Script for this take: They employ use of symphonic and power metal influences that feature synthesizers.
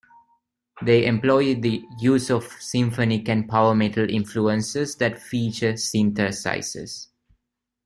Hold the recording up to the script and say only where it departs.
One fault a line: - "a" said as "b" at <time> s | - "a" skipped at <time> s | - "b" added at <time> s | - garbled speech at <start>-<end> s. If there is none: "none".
- "the" added at 1.5 s